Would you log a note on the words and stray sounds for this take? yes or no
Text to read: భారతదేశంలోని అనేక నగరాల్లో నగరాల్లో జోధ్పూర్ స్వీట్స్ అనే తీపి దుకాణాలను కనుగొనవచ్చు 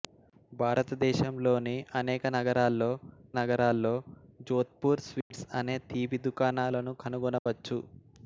yes